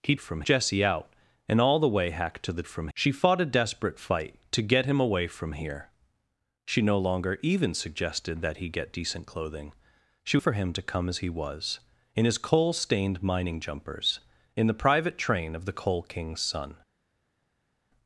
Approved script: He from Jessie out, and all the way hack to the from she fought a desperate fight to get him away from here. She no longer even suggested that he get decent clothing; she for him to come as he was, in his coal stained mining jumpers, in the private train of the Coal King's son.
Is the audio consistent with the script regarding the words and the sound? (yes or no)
yes